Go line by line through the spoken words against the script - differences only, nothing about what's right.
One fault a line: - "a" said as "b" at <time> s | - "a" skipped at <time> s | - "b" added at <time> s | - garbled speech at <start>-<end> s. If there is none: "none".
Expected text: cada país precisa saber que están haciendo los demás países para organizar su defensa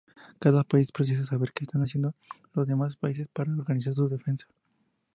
none